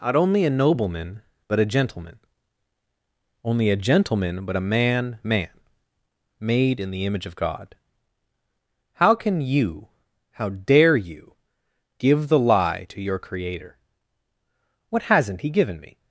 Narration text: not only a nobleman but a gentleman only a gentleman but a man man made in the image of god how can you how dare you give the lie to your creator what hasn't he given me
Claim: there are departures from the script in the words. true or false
false